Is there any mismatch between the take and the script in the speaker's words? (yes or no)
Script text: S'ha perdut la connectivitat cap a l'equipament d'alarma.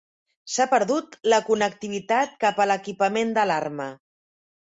no